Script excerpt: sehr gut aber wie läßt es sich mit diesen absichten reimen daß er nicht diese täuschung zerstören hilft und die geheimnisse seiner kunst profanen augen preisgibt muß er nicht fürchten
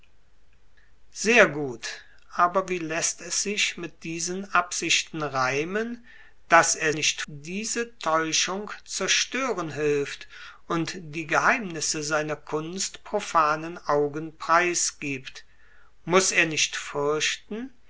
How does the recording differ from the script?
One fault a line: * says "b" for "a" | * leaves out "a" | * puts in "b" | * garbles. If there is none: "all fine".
all fine